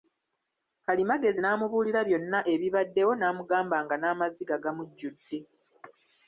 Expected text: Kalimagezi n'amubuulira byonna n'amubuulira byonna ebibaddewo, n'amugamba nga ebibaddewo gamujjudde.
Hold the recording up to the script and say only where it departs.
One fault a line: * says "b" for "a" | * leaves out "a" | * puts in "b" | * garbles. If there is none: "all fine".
* leaves out "n'amubuulira byonna"
* says "n'amaziga" for "ebibaddewo"